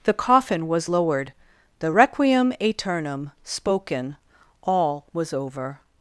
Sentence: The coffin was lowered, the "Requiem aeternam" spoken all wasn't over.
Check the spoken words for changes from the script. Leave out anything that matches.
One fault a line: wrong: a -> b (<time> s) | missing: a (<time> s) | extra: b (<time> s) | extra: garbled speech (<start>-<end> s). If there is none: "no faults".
wrong: wasn't -> was (5.1 s)